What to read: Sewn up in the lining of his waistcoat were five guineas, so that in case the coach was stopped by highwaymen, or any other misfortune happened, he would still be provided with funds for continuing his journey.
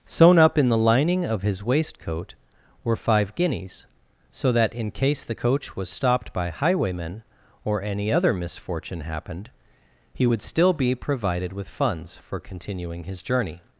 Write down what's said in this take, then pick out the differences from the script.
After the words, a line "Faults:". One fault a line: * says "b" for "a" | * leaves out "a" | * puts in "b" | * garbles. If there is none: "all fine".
Sewn up in the lining of his waistcoat were five guineas, so that in case the coach was stopped by highwaymen, or any other misfortune happened, he would still be provided with funds for continuing his journey.
Faults:
all fine